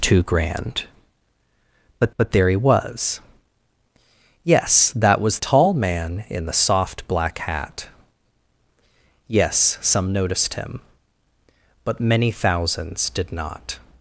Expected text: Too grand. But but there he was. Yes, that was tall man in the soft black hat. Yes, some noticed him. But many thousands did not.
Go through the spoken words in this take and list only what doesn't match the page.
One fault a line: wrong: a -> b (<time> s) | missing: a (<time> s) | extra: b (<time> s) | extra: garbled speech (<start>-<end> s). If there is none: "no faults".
no faults